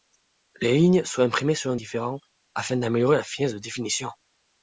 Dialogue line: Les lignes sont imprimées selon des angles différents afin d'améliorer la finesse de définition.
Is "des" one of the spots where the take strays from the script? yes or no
yes